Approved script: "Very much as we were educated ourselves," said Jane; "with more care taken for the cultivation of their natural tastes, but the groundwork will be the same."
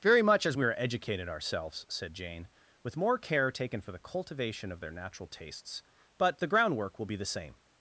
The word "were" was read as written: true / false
false